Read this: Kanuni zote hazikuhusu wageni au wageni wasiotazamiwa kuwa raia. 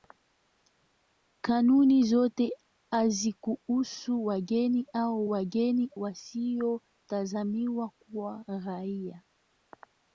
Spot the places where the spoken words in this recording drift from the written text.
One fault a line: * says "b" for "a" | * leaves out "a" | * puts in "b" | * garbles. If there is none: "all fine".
all fine